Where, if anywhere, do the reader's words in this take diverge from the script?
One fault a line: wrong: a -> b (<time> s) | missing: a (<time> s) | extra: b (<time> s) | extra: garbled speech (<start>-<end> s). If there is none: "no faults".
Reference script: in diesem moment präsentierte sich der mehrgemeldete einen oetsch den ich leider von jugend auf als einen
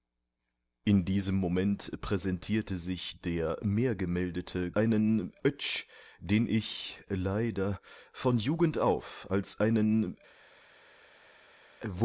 no faults